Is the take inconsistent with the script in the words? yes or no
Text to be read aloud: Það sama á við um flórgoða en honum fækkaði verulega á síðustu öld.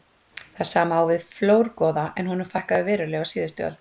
no